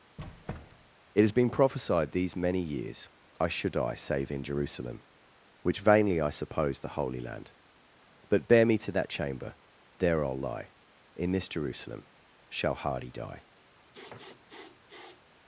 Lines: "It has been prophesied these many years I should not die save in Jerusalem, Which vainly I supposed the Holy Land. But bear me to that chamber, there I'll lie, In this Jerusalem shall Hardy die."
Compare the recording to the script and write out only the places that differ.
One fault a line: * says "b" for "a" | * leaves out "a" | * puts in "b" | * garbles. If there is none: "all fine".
* leaves out "not"